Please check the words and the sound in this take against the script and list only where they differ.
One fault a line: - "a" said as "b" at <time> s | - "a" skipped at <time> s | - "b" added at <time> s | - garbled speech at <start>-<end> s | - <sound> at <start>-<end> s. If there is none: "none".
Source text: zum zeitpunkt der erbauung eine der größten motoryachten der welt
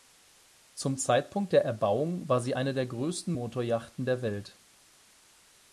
- "war sie" added at 2.3 s